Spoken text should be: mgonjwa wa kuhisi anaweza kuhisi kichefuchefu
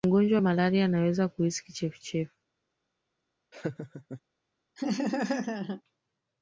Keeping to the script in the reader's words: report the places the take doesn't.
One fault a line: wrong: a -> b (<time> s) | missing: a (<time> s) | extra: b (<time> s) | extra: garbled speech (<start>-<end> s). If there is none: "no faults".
wrong: kuhisi -> malaria (0.4 s)